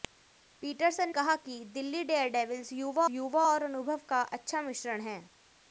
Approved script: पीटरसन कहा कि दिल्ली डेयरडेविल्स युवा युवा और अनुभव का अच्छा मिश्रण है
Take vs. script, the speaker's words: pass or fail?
pass